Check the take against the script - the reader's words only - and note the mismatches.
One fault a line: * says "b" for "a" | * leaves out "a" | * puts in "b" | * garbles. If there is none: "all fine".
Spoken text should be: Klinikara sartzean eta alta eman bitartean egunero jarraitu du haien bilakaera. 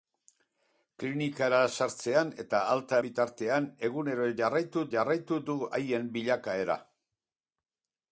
* leaves out "eman"
* puts in "jarraitu"